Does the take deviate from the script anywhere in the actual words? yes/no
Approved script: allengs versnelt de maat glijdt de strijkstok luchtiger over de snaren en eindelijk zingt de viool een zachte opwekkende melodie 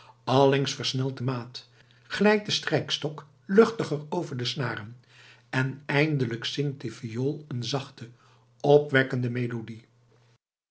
no